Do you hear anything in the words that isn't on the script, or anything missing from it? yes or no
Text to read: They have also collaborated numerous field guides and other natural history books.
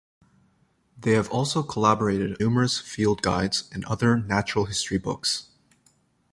no